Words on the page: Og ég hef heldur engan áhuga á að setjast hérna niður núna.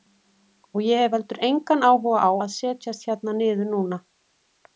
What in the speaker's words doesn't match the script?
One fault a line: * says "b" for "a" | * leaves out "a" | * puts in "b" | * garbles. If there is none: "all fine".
all fine